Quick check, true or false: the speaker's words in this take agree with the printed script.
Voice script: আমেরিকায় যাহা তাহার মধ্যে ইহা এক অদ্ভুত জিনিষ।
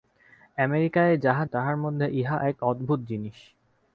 true